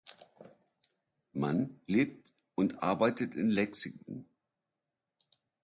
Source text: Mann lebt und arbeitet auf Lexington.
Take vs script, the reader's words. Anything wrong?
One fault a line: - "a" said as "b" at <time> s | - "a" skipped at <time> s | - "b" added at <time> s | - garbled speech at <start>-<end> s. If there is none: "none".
- "auf" said as "in" at 3.4 s